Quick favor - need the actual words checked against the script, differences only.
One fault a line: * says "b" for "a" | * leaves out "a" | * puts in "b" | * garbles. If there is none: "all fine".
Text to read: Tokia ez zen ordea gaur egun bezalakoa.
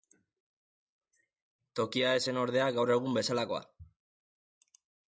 all fine